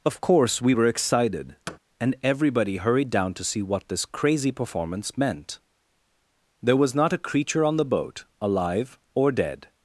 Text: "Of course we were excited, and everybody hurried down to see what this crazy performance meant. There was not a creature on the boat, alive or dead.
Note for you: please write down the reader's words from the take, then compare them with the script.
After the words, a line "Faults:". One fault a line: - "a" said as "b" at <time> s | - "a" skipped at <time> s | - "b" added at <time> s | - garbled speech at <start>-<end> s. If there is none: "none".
"Of course we were excited, and everybody hurried down to see what this crazy performance meant. There was not a creature on the boat, alive or dead.
Faults:
none